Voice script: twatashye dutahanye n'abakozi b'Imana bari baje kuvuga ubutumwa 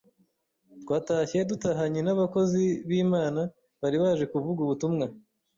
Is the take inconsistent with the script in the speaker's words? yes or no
no